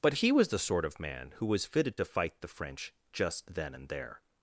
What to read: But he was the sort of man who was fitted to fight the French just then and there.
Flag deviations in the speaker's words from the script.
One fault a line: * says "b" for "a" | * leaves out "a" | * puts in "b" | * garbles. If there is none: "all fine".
all fine